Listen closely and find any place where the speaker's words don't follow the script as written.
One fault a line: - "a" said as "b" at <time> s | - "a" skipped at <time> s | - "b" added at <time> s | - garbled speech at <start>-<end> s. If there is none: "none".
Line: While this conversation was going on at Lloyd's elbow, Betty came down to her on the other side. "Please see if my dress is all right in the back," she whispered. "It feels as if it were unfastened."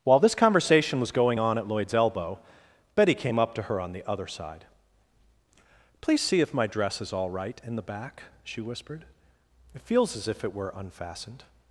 - "down" said as "up" at 3.4 s